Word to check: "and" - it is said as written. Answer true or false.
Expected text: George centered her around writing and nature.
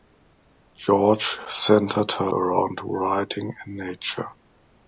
true